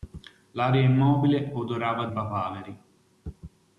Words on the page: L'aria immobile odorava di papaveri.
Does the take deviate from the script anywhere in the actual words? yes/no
yes